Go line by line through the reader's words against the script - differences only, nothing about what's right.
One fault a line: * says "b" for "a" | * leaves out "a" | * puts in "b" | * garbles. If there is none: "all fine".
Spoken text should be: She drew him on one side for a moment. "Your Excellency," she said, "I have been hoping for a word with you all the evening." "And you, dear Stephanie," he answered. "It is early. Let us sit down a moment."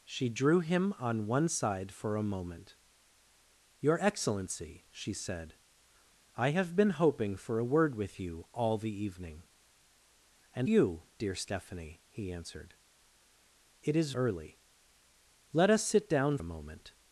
all fine